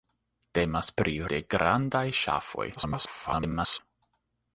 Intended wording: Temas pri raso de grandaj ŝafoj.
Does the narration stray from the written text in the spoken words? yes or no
yes